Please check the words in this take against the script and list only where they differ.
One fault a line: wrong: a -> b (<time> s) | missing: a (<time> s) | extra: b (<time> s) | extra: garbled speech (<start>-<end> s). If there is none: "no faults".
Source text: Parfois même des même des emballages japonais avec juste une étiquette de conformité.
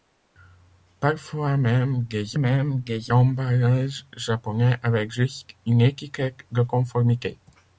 no faults